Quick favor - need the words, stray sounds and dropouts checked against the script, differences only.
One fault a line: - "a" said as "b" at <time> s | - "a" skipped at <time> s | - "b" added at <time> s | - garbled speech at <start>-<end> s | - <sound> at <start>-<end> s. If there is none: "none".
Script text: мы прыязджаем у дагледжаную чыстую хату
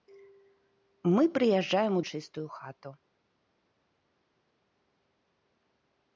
- "дагледжаную" skipped at 2.0 s